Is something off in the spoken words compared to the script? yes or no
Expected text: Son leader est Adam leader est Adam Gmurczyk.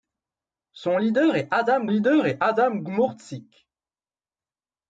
no